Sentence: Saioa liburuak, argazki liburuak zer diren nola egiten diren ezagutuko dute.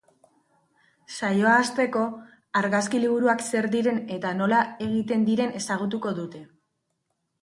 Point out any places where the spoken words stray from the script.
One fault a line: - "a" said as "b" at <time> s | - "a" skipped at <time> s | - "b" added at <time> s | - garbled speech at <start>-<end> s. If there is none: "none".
- "liburuak" said as "hasteko" at 1.6 s
- "eta" added at 4.2 s